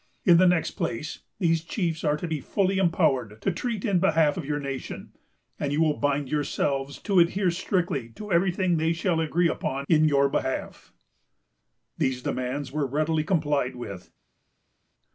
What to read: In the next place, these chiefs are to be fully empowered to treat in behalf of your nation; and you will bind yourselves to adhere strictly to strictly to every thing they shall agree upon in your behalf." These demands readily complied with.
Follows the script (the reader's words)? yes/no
no